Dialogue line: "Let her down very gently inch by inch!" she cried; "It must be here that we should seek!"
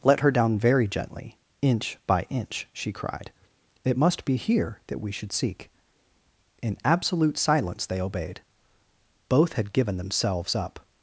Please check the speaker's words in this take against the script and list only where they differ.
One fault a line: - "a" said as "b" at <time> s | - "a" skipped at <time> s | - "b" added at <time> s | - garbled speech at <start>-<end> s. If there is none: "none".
- "In absolute silence they obeyed Both had given themselves up" added at 6.6 s